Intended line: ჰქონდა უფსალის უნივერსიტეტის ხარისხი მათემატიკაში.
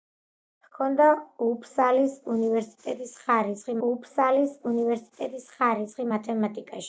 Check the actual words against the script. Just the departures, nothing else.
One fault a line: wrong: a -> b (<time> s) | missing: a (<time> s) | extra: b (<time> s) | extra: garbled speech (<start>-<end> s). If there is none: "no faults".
extra: უფსალის უნივერსიტეტის ხარისხი (3.9 s)